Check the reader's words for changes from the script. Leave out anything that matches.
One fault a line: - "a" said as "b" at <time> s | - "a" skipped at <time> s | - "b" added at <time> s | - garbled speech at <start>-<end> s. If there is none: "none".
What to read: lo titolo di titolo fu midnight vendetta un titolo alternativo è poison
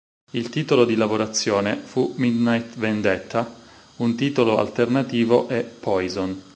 - "lo" said as "il" at 0.3 s
- "titolo" said as "lavorazione" at 0.9 s